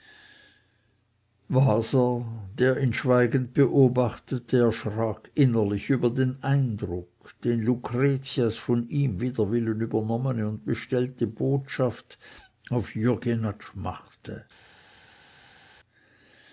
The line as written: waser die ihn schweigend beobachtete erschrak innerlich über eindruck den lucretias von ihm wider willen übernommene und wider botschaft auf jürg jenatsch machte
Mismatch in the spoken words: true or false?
true